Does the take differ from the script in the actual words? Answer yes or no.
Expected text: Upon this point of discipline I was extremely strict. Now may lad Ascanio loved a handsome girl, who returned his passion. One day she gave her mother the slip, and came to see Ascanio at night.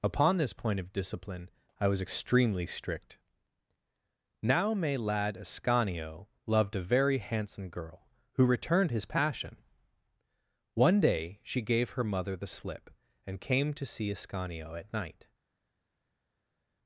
yes